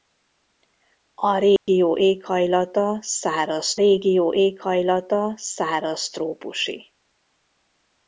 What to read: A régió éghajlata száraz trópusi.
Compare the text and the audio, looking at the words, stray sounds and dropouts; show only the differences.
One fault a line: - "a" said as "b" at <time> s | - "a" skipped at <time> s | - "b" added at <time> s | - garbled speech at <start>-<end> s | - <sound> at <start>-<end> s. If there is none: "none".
- dropout at 1.6-1.7 s
- "régió éghajlata száraz" added at 3.7 s